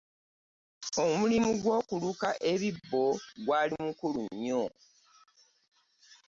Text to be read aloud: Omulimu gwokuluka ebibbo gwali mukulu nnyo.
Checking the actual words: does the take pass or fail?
pass